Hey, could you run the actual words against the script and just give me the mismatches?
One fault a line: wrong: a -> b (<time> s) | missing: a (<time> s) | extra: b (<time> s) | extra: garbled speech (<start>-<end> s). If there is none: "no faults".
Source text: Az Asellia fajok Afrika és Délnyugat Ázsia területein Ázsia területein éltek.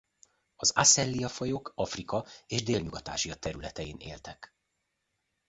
missing: Ázsia területein (4.0 s)